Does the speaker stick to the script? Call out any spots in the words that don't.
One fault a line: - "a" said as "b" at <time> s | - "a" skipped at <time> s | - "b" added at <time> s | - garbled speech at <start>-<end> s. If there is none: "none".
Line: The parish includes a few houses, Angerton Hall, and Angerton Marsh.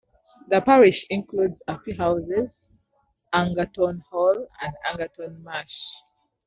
none